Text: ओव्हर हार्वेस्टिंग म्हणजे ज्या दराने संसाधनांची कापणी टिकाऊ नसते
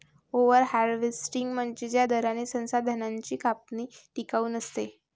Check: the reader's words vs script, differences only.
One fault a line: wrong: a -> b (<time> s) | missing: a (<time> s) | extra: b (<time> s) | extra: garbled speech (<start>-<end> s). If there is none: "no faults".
no faults